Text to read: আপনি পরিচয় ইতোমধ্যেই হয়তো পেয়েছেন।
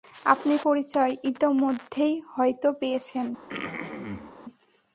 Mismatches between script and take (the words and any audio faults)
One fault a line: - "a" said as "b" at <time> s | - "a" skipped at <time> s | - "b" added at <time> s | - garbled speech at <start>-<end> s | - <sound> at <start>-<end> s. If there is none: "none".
- throat clearing at 3.5-4.3 s